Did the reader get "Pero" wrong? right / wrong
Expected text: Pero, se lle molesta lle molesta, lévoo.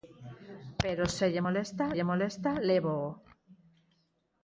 right